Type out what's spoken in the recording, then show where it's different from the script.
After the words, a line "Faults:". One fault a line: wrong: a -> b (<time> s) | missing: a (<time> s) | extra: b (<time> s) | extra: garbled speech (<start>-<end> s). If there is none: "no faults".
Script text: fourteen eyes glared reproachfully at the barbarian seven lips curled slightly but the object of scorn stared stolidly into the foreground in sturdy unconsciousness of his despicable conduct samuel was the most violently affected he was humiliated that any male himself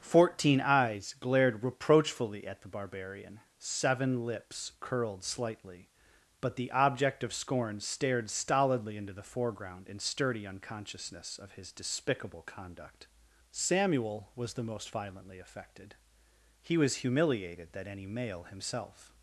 fourteen eyes glared reproachfully at the barbarian seven lips curled slightly but the object of scorn stared stolidly into the foreground in sturdy unconsciousness of his despicable conduct samuel was the most violently affected he was humiliated that any male himself
Faults:
no faults